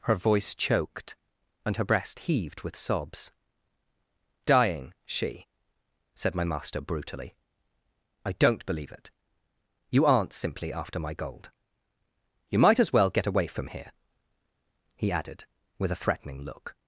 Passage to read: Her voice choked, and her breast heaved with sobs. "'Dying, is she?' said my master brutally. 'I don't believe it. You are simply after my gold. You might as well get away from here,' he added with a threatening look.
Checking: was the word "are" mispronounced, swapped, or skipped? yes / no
yes